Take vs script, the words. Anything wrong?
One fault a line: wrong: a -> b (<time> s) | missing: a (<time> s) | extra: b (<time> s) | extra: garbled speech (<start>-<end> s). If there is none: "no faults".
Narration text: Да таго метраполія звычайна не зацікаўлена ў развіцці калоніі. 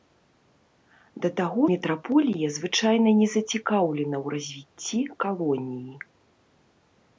no faults